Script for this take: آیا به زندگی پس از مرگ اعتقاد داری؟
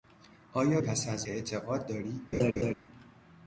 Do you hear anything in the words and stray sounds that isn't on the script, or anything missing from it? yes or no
yes